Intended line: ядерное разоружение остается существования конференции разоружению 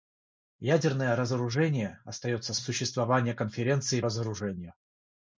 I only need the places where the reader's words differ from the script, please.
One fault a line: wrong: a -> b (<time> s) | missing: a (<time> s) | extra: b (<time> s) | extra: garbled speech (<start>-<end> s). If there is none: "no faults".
no faults